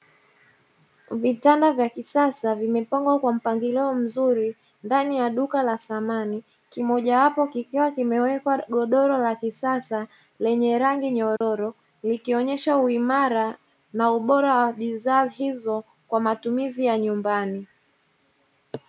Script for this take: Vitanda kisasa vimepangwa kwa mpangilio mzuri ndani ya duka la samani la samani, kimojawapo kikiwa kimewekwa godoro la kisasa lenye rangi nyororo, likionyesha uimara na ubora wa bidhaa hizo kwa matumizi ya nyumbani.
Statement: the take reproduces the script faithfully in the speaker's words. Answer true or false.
false